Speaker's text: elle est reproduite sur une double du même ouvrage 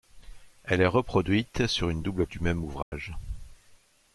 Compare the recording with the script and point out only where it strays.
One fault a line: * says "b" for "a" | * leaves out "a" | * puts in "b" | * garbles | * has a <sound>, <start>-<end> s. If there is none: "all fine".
* has a dropout, 2.8-2.9 s